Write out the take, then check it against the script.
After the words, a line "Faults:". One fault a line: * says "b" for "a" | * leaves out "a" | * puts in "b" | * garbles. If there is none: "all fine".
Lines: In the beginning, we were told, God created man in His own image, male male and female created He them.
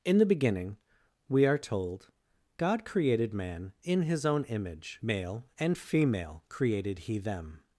In the beginning, we are told, God created man in His own image, male and female created He them.
Faults:
* says "are" for "were"
* leaves out "male"